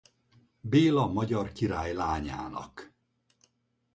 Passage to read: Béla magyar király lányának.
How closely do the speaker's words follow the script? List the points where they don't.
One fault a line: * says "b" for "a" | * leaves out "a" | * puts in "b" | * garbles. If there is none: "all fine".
all fine